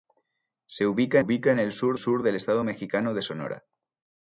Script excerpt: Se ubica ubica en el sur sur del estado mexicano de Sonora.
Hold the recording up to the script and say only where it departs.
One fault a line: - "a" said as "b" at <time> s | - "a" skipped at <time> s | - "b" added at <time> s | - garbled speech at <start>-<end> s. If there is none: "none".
none